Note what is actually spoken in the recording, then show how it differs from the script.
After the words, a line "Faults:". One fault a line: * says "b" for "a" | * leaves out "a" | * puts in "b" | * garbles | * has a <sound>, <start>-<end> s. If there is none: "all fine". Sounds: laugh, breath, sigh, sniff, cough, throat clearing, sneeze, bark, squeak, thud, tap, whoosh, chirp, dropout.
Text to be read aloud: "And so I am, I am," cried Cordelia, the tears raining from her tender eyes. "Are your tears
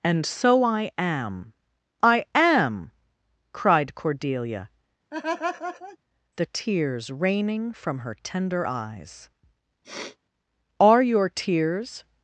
"And so I am, I am," cried Cordelia, the tears raining from her tender eyes. "Are your tears
Faults:
* has a laugh, 5.1-6.0 s
* has a sniff, 9.8-10.2 s